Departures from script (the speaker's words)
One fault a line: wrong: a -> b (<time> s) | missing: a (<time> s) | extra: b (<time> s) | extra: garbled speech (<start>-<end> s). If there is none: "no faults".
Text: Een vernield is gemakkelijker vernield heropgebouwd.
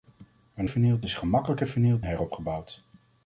no faults